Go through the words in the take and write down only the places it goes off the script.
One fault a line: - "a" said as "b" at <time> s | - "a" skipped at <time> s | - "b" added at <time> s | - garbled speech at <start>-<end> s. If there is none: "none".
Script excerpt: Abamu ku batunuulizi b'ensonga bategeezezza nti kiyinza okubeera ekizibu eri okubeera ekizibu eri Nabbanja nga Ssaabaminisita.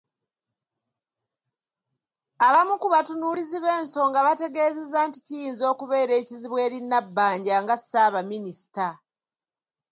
- "okubeera ekizibu eri" skipped at 6.8 s